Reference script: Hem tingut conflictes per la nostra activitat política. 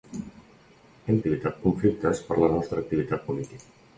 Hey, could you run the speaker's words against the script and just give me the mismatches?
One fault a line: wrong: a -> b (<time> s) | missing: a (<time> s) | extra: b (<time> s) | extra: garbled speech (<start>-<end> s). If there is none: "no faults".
wrong: tingut -> activitat (1.2 s)